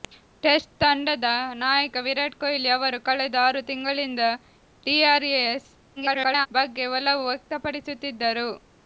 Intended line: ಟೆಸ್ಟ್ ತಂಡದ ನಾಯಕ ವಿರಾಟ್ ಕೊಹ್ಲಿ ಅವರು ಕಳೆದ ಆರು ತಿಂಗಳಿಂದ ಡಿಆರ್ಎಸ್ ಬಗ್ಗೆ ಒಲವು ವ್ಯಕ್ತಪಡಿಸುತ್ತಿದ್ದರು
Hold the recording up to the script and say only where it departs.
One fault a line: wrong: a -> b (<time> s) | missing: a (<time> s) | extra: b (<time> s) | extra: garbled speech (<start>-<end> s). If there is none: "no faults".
extra: garbled speech (6.0-6.5 s)